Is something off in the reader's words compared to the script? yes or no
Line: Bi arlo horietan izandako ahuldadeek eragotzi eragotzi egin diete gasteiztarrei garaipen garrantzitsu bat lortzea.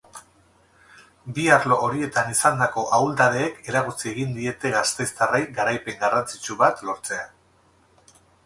yes